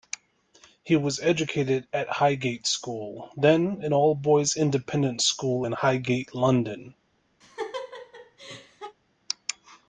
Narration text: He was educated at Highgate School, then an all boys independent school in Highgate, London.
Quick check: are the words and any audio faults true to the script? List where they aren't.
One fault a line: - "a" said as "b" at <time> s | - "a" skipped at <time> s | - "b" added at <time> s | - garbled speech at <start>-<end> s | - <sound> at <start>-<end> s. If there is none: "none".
- laugh at 7.4-9.0 s